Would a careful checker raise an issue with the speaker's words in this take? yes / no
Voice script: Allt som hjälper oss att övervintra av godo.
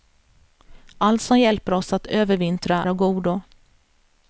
no